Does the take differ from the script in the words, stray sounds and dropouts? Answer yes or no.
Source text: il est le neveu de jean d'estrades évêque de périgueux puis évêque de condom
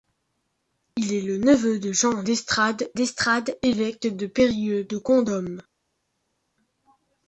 yes